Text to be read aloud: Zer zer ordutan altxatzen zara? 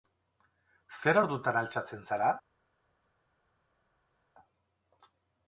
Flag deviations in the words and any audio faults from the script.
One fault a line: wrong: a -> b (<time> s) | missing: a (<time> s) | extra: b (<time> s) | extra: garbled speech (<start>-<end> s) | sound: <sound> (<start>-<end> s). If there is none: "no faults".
missing: zer (1.2 s)